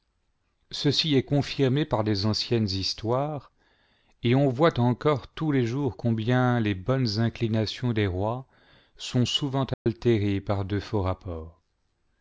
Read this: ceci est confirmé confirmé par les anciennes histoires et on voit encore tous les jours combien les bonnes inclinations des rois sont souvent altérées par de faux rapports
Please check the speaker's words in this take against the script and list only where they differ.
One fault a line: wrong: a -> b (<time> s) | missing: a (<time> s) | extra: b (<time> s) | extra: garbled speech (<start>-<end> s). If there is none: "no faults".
missing: confirmé (1.9 s)